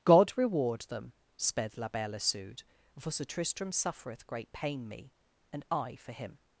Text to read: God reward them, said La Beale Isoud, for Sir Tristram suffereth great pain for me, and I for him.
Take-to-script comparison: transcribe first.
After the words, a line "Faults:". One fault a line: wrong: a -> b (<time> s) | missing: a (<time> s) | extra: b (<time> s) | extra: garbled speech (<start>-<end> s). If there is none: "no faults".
God reward them, sped La Beale Isoud, for Sir Tristram suffereth great pain me, and I for him.
Faults:
wrong: said -> sped (1.4 s)
missing: for (4.9 s)